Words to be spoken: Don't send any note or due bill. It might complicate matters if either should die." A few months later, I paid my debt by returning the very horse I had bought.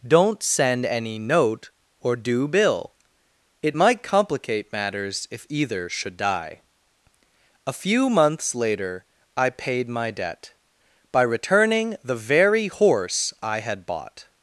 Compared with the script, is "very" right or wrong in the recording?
right